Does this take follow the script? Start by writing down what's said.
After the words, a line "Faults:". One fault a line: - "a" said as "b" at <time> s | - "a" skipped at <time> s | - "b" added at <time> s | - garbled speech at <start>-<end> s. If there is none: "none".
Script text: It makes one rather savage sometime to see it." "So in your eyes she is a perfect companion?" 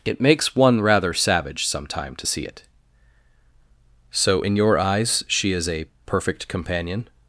It makes one rather savage sometime to see it." "So in your eyes she is a perfect companion?"
Faults:
none